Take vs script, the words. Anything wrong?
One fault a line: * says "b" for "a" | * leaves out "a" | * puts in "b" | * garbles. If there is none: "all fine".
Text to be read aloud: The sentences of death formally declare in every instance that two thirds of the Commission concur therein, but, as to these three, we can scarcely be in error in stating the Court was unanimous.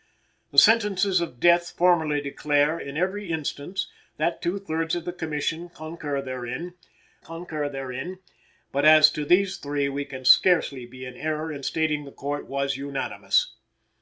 * puts in "concur therein"